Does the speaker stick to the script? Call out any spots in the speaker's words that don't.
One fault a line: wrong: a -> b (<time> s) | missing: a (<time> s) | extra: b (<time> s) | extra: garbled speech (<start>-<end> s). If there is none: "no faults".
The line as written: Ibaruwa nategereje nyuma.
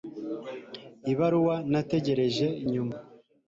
no faults